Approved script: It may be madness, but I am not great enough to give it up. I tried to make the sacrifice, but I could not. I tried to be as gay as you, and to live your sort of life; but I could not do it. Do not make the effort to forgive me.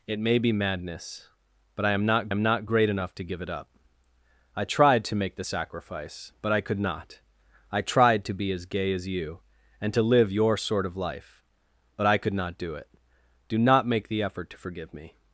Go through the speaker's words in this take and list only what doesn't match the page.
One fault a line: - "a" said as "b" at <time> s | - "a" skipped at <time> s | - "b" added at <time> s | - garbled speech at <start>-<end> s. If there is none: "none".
- "am not" added at 2.3 s